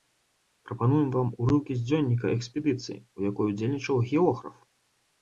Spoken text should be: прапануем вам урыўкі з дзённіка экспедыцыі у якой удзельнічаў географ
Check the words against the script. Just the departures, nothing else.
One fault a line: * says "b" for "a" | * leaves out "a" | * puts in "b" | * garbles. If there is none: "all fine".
all fine